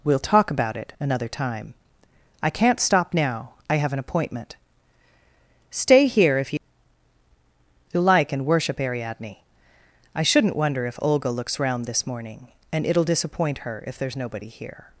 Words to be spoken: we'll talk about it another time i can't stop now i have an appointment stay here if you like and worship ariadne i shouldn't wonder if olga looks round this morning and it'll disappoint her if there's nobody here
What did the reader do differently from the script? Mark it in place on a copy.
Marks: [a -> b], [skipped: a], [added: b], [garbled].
we'll talk about it another time i can't stop now i have an appointment stay here if you [added: you] like and worship ariadne i shouldn't wonder if olga looks round this morning and it'll disappoint her if there's nobody here